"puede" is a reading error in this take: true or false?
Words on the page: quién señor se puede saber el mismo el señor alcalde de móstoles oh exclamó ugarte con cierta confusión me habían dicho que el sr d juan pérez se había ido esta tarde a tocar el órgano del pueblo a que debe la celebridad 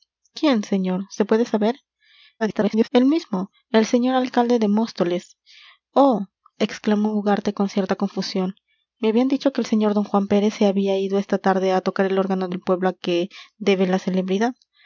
false